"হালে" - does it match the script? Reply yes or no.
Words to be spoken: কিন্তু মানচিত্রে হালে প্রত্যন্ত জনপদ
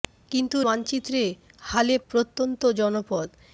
yes